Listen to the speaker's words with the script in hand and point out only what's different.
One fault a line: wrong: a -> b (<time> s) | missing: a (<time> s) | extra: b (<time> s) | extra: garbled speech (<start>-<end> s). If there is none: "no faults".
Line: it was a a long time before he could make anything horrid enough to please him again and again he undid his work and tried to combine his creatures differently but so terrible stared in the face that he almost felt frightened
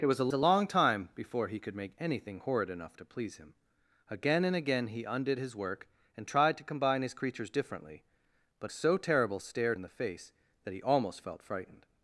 no faults